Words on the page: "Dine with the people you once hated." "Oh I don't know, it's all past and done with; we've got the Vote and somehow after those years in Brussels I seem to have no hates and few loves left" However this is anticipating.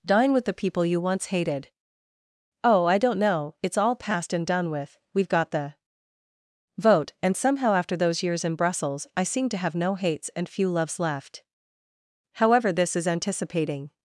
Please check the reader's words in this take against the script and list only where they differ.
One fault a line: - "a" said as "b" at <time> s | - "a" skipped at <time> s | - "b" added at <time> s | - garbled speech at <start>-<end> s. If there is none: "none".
none